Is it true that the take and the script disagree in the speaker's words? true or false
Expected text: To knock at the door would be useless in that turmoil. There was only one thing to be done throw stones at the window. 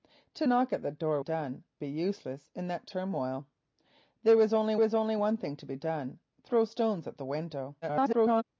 true